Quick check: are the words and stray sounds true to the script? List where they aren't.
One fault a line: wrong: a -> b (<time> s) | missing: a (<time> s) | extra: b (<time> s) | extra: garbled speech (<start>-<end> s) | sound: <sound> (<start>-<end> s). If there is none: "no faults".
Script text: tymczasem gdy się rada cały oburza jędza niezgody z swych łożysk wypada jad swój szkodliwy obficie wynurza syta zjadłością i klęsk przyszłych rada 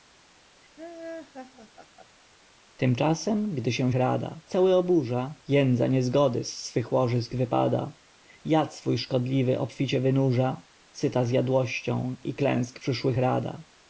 sound: laugh (0.8-2.3 s)